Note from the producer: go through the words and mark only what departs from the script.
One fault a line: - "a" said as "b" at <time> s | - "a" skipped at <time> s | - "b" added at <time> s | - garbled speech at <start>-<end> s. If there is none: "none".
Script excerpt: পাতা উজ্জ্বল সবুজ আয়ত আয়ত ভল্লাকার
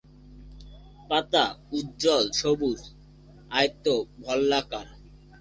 - "আয়ত" skipped at 3.9 s